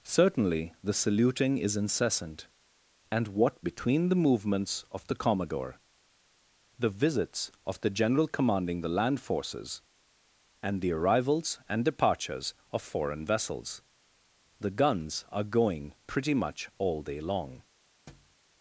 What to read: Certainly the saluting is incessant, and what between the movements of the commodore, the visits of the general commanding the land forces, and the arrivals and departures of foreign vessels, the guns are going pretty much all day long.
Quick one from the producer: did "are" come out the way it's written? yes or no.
yes